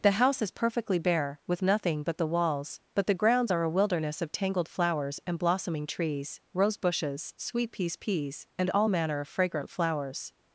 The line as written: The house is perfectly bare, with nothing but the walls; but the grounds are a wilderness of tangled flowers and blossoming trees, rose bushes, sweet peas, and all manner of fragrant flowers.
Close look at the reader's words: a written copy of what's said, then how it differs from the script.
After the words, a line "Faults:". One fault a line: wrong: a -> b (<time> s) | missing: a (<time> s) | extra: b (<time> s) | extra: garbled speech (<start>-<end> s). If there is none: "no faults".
The house is perfectly bare, with nothing but the walls; but the grounds are a wilderness of tangled flowers and blossoming trees, rose bushes, sweet peas peas, and all manner of fragrant flowers.
Faults:
extra: peas (8.0 s)